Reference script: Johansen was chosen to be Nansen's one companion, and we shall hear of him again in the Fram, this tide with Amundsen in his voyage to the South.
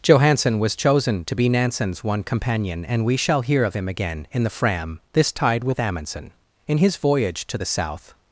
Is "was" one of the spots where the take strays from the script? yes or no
no